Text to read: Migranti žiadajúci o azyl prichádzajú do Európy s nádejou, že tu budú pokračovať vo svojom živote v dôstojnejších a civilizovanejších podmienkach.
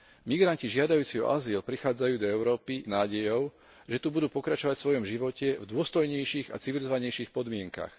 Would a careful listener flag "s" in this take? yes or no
yes